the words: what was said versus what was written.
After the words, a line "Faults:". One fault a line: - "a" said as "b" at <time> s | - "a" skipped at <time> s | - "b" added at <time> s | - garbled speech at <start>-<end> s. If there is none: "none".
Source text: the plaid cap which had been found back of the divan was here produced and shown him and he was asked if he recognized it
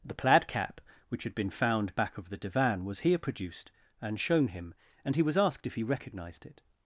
the plaid cap which had been found back of the divan was here produced and shown him and he was asked if he recognized it
Faults:
none